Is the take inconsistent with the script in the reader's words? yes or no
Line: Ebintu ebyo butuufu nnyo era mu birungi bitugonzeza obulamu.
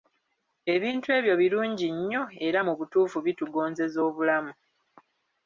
yes